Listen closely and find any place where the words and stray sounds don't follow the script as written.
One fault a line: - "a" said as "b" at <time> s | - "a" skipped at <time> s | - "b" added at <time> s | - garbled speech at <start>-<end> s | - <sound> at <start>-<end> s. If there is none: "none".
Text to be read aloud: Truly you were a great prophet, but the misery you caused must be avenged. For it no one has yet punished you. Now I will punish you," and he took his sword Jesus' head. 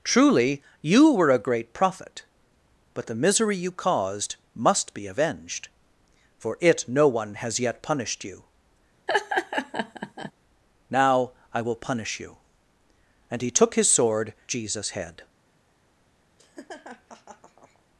- laugh at 9.1-10.3 s
- laugh at 16.4-17.8 s